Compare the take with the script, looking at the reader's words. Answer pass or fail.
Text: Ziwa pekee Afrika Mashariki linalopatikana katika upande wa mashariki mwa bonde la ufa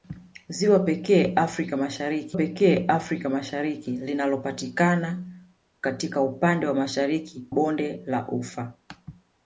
fail